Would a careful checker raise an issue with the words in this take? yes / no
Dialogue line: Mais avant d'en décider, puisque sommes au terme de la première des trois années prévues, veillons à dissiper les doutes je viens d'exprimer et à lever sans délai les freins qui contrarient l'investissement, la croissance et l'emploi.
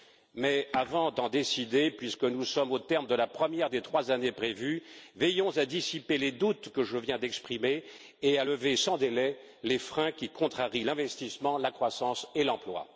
yes